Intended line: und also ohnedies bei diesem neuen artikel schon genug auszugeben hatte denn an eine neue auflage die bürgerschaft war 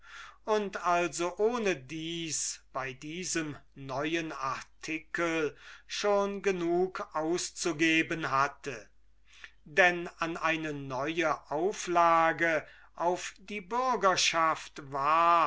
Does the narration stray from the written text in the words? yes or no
yes